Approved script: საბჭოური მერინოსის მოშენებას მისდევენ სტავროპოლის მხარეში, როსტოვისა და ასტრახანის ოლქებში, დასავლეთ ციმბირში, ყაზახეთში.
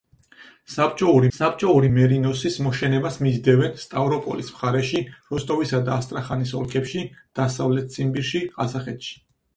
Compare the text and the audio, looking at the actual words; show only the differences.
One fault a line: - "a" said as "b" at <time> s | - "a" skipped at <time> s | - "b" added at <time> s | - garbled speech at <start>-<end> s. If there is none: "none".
- "საბჭოური" added at 1.4 s